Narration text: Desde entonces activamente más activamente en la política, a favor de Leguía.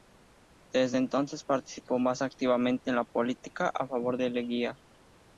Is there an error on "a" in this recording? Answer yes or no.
no